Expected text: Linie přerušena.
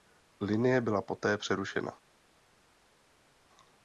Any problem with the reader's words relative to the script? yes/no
yes